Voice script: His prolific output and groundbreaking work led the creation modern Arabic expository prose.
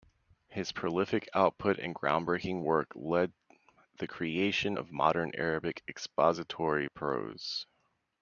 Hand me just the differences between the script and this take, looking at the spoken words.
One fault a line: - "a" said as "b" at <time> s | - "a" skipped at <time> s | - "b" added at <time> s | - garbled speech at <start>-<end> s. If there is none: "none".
- "of" added at 4.7 s